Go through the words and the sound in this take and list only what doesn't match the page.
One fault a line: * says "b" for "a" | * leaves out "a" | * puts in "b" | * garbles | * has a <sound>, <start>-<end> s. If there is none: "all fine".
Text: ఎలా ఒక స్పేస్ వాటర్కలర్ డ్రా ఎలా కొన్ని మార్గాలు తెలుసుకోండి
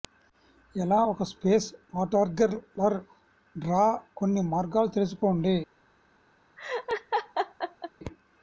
* leaves out "ఎలా"
* has a laugh, 6.6-7.9 s